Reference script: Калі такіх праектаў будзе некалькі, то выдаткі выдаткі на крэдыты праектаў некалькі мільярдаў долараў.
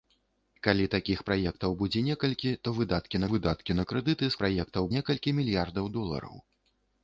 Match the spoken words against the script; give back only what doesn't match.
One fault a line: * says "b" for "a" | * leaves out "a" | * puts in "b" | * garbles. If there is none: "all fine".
all fine